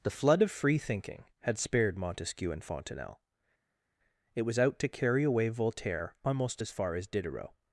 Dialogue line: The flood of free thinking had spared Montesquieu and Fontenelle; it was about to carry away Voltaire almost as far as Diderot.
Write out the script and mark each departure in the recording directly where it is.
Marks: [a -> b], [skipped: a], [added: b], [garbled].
The flood of free thinking had spared Montesquieu and Fontenelle; it was [about -> out] to carry away Voltaire almost as far as Diderot.